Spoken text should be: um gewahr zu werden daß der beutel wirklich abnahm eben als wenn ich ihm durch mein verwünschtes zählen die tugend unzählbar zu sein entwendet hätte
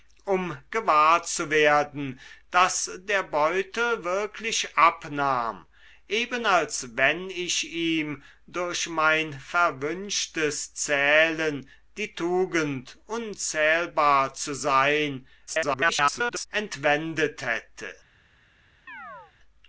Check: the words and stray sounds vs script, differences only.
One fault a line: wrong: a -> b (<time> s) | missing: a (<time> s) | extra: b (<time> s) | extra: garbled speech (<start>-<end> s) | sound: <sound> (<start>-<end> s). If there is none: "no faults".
extra: garbled speech (15.5-16.5 s)
sound: chirp (18.9-19.3 s)